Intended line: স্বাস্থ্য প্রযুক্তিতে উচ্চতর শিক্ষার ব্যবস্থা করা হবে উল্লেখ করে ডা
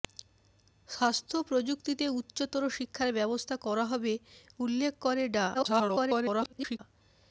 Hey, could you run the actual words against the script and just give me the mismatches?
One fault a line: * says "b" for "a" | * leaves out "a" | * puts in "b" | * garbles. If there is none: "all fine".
* garbles